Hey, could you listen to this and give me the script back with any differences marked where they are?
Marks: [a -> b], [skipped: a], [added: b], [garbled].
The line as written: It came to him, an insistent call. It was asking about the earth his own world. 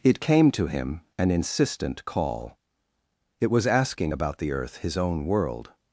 It came to him, an insistent call. It was asking about the earth his own world.